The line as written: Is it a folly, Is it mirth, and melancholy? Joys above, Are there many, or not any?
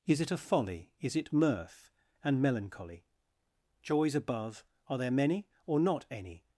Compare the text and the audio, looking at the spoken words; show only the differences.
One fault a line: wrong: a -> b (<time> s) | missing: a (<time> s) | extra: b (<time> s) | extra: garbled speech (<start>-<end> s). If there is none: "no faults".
no faults